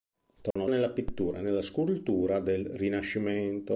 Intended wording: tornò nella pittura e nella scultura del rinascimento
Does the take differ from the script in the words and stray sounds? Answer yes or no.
yes